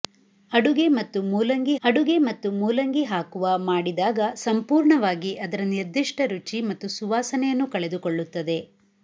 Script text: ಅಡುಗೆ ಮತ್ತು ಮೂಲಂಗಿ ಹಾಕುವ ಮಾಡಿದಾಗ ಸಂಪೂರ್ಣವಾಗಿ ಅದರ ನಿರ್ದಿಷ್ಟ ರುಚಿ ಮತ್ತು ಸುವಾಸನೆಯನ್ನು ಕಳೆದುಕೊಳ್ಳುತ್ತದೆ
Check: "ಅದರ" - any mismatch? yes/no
no